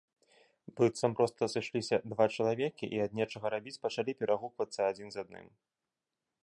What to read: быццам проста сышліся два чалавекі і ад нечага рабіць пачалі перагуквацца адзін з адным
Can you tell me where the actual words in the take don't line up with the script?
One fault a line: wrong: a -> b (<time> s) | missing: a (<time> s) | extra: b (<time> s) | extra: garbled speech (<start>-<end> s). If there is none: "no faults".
no faults